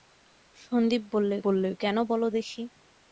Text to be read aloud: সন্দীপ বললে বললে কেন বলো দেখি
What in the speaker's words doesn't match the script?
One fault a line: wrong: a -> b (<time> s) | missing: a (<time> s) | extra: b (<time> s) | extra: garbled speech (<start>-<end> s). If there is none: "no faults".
no faults